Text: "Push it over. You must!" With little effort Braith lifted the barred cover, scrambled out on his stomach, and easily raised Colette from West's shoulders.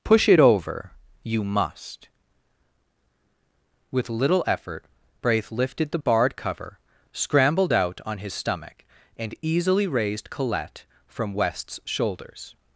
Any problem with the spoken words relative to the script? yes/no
no